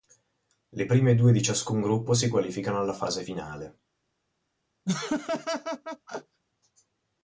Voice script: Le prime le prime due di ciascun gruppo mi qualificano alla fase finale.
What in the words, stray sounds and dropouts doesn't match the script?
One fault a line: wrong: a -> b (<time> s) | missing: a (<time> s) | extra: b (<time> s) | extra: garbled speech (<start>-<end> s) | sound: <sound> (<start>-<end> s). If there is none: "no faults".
missing: le prime (1.2 s)
wrong: mi -> si (2.1 s)
sound: laugh (4.8-6.4 s)